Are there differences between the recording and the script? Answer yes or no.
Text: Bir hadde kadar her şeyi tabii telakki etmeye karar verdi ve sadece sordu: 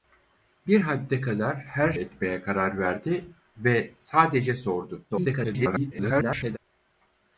yes